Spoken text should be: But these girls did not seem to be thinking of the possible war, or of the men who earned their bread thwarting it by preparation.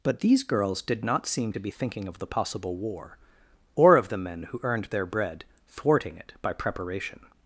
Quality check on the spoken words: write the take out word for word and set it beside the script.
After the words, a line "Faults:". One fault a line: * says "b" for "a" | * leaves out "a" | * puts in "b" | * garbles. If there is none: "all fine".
But these girls did not seem to be thinking of the possible war, or of the men who earned their bread thwarting it by preparation.
Faults:
all fine